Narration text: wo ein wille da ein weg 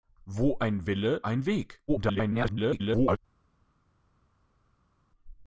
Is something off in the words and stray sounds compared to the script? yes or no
yes